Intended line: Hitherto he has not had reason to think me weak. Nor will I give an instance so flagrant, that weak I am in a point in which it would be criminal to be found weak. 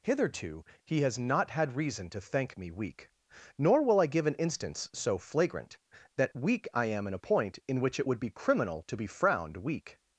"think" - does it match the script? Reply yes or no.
no